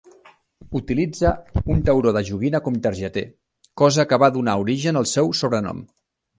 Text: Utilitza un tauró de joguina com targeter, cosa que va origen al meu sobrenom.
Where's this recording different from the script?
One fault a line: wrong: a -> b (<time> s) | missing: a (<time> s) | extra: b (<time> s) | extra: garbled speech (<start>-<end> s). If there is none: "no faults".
extra: donar (4.4 s)
wrong: meu -> seu (5.2 s)